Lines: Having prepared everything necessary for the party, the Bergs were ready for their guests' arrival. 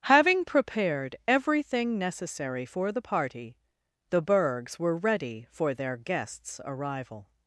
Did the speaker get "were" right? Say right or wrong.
right